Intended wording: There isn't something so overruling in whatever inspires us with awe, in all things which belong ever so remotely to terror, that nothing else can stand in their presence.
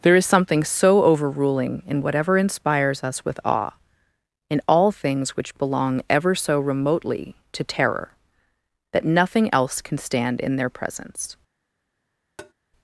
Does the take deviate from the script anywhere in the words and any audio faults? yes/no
yes